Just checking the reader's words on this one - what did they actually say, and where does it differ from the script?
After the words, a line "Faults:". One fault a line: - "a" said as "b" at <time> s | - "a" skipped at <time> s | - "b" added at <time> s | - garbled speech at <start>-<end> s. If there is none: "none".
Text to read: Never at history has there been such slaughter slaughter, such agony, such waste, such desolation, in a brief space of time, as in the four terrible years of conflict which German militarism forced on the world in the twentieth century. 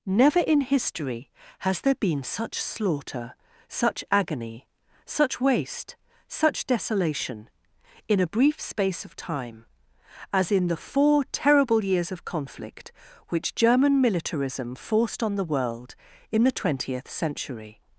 Never in history has there been such slaughter, such agony, such waste, such desolation, in a brief space of time, as in the four terrible years of conflict which German militarism forced on the world in the twentieth century.
Faults:
- "at" said as "in" at 0.4 s
- "slaughter" skipped at 3.4 s